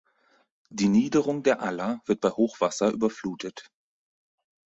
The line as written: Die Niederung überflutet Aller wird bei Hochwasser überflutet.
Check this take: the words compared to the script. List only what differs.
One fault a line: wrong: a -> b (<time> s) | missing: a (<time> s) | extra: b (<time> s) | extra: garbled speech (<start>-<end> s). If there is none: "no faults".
wrong: überflutet -> der (1.4 s)